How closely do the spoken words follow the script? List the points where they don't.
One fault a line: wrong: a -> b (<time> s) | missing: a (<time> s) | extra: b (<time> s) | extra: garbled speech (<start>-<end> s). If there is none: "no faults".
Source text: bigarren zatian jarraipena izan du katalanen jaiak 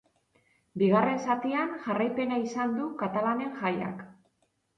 no faults